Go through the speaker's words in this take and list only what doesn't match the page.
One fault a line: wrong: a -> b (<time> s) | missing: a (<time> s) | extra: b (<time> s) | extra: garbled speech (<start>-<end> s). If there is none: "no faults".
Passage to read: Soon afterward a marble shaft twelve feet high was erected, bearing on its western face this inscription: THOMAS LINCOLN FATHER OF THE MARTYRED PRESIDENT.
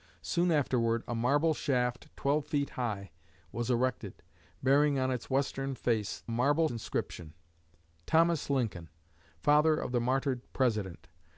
wrong: this -> marble (6.3 s)